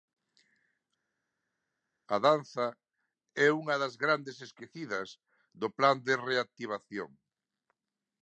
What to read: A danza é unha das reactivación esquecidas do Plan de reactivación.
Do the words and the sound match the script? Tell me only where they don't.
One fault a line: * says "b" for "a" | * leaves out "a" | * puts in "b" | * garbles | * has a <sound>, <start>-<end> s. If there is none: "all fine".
* says "grandes" for "reactivación"